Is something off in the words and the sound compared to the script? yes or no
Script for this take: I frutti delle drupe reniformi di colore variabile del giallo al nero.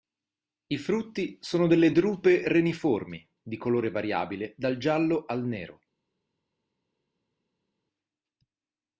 yes